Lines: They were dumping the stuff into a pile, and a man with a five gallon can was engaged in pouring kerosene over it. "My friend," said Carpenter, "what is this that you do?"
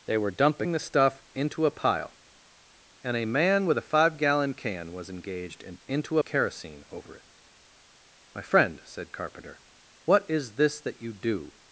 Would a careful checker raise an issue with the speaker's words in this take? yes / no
yes